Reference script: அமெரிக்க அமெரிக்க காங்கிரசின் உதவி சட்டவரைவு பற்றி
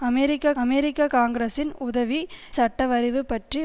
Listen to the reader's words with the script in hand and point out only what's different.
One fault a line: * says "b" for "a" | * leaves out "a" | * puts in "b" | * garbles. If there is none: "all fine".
all fine